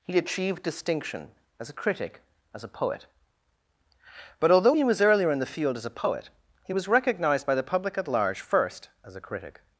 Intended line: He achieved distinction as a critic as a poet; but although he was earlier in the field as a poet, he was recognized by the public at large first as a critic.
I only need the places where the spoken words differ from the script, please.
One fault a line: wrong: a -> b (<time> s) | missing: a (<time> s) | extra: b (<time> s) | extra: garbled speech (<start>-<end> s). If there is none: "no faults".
no faults